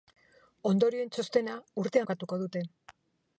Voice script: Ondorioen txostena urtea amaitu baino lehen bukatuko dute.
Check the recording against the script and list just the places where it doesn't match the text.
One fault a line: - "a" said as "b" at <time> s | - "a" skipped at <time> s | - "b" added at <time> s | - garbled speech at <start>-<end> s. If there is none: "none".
- "amaitu baino lehen" skipped at 2.1 s